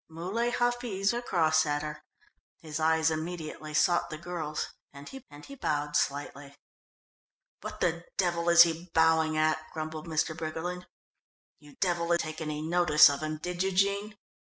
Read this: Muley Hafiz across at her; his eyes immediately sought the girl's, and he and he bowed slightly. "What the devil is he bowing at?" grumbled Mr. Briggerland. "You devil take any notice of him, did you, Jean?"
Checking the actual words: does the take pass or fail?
pass